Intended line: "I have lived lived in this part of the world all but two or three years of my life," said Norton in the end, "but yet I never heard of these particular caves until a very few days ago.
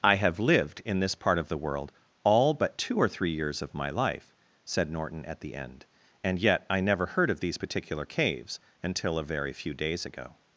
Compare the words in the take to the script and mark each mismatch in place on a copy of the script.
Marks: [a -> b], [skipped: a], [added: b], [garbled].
"I have lived [skipped: lived] in this part of the world all but two or three years of my life," said Norton [in -> at] the end, ["but -> and] yet I never heard of these particular caves until a very few days ago.